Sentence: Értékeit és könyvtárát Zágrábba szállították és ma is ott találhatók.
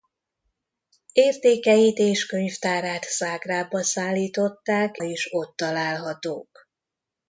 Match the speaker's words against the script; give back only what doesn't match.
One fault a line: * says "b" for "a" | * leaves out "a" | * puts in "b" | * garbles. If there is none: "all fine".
* leaves out "és ma"